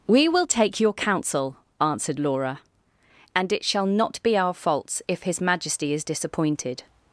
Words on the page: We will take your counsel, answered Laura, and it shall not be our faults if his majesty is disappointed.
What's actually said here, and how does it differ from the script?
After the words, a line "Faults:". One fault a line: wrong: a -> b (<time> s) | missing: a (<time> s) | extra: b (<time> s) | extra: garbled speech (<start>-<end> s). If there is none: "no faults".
We will take your counsel, answered Laura, and it shall not be our faults if his majesty is disappointed.
Faults:
no faults